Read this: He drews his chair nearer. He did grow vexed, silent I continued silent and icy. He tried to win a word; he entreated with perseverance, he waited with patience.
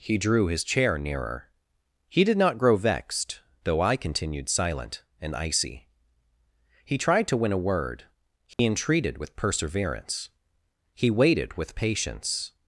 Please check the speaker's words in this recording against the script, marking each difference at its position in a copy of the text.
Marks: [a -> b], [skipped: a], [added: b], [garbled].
He [drews -> drew] his chair nearer. He did [added: not] grow vexed, [silent -> though] I continued silent and icy. He tried to win a word; he entreated with perseverance, he waited with patience.